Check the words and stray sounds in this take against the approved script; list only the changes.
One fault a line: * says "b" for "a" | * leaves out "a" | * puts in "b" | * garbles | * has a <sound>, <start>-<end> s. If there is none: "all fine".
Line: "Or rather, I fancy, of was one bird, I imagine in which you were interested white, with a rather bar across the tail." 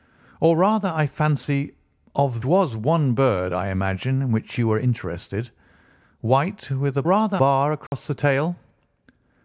* has a dropout, 7.9-7.9 s